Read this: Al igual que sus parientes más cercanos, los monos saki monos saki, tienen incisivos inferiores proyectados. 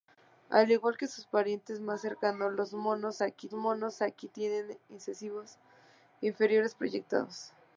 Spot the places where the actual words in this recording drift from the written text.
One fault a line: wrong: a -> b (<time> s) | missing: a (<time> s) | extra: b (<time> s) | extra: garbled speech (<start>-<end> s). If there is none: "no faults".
no faults